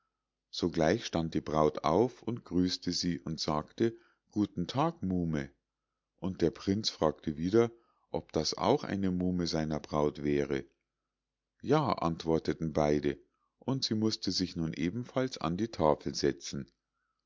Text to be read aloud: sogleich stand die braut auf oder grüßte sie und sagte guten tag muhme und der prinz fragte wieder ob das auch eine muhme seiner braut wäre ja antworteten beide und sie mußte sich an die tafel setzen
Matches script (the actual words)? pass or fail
fail